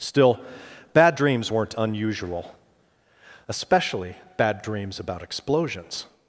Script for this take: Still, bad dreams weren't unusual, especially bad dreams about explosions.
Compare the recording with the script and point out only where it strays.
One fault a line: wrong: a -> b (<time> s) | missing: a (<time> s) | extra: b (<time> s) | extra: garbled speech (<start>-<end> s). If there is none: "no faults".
no faults